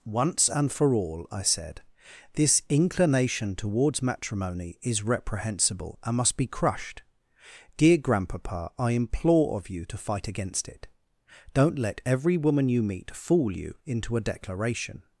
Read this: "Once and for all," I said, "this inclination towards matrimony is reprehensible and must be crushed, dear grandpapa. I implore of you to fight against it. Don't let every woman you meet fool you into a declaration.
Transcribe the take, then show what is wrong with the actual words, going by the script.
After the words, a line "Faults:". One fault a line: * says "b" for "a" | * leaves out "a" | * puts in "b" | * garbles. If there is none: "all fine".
"Once and for all," I said, "this inclination towards matrimony is reprehensible and must be crushed, dear grandpapa. I implore of you to fight against it. Don't let every woman you meet fool you into a declaration.
Faults:
all fine